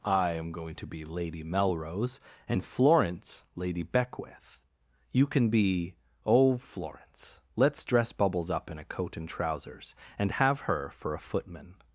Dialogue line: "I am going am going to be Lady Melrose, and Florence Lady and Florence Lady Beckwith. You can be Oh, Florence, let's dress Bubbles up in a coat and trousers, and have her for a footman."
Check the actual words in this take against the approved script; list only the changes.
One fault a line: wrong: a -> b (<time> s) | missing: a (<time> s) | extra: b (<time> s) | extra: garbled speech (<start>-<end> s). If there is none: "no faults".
missing: am going (0.7 s)
missing: and Florence Lady (3.8 s)